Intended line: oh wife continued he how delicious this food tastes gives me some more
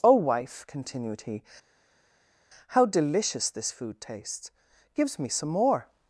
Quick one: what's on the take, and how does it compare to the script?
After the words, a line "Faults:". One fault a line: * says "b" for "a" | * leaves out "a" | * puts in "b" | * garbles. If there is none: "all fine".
oh wife continued he how delicious this food tastes gives me some more
Faults:
all fine